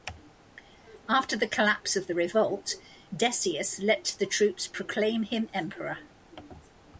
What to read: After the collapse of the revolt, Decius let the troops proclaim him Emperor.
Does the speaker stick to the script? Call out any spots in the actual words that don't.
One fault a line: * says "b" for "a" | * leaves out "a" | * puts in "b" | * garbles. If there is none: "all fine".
all fine